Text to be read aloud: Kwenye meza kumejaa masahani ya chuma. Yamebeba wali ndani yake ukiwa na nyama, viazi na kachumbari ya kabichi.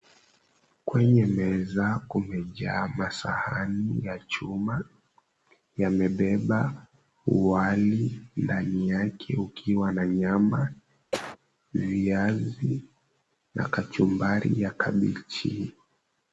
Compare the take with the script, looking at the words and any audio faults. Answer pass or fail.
fail